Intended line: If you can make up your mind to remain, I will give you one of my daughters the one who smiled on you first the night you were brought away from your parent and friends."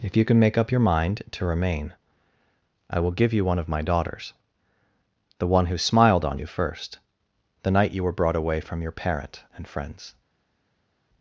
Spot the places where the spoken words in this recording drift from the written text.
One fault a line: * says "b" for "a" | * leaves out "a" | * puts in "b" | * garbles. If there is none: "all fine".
all fine